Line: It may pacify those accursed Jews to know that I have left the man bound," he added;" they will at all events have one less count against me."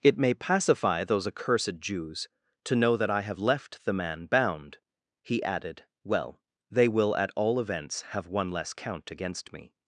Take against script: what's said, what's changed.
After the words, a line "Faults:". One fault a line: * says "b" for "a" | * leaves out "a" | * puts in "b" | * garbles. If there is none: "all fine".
It may pacify those accursed Jews to know that I have left the man bound," he added;" well they will at all events have one less count against me."
Faults:
* puts in "well"